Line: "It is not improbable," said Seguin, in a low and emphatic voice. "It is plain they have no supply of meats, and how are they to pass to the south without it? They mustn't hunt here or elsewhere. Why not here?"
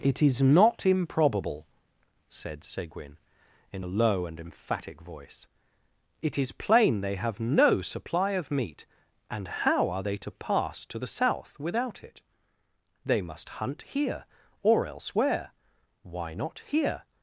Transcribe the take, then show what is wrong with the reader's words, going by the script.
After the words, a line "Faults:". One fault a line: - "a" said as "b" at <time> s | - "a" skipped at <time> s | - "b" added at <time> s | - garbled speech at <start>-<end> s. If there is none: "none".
"It is not improbable," said Seguin, in a low and emphatic voice. "It is plain they have no supply of meat, and how are they to pass to the south without it? They must hunt here or elsewhere. Why not here?"
Faults:
- "meats" said as "meat" at 8.5 s
- "mustn't" said as "must" at 13.2 s